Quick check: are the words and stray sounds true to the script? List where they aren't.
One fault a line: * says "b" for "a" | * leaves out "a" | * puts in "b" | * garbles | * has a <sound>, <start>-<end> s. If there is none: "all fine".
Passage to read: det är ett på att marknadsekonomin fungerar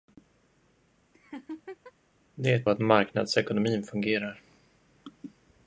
* has a laugh, 1.1-1.9 s